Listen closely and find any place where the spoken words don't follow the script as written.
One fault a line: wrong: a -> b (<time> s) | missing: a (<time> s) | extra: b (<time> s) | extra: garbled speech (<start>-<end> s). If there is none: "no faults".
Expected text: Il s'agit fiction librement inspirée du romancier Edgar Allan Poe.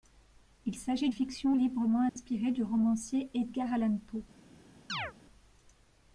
no faults